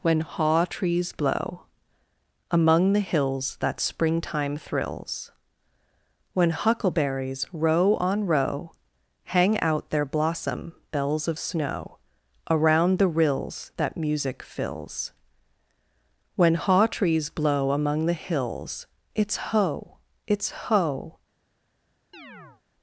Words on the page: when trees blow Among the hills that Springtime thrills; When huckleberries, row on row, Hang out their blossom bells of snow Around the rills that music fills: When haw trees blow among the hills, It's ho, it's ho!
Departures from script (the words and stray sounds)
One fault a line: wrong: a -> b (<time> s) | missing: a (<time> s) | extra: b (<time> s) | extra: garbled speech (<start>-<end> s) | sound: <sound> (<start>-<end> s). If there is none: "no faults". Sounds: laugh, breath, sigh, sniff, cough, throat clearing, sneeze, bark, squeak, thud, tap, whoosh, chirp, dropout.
extra: haw (0.2 s)
sound: chirp (22.1-22.6 s)